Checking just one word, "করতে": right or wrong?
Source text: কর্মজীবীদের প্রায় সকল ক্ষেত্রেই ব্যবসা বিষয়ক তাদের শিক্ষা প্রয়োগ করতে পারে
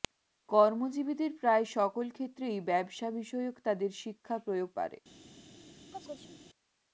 wrong